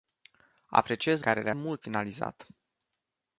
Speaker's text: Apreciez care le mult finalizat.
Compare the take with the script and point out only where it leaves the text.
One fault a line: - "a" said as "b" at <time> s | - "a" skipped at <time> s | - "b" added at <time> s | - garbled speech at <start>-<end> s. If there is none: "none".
none